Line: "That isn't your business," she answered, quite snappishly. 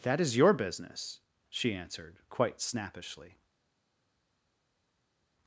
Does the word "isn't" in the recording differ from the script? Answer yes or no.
yes